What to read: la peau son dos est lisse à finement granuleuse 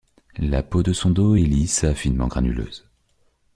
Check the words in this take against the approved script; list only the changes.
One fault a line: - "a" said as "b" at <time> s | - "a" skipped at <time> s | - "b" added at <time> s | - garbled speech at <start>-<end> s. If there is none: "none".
- "de" added at 0.8 s